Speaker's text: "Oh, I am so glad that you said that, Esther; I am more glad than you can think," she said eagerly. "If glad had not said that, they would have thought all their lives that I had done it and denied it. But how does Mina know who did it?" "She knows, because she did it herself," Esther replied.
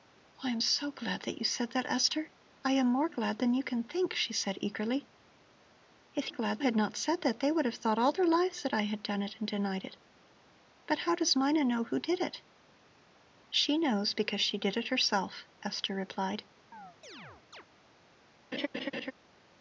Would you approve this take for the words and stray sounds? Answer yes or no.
no